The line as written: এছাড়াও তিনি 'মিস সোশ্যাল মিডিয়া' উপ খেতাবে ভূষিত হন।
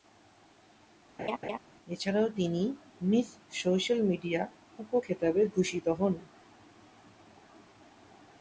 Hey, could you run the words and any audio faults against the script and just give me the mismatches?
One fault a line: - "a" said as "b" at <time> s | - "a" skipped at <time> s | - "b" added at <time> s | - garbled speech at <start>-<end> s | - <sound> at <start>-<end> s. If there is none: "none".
- laugh at 1.2-1.6 s